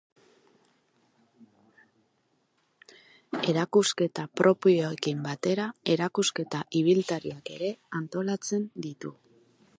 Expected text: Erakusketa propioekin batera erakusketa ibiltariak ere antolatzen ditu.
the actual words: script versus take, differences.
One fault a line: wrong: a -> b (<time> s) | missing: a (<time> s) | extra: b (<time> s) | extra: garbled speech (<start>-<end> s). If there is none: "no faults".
no faults